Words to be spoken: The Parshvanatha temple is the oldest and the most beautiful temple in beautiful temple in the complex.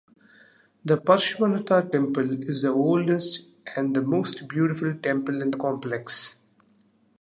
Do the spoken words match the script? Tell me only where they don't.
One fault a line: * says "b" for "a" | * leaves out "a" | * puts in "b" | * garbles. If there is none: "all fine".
* leaves out "beautiful temple in"